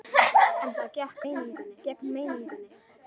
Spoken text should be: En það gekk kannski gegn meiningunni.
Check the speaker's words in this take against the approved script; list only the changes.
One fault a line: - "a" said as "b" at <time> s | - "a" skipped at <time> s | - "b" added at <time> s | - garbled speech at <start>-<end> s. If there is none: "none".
- "kannski" said as "meiningunni" at 1.2 s